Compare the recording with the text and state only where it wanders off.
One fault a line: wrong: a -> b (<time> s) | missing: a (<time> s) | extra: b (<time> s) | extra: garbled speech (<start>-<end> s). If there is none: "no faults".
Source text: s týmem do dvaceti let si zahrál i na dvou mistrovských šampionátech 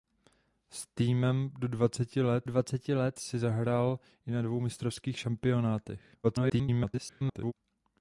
extra: dvaceti let (2.4 s)
extra: garbled speech (6.2-7.5 s)